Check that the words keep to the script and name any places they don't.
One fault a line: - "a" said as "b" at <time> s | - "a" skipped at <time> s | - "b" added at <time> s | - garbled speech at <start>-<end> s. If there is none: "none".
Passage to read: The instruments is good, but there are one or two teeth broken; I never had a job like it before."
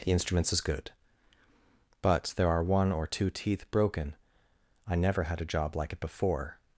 none